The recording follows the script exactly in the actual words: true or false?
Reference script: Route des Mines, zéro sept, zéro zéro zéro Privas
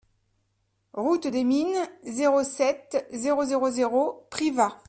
true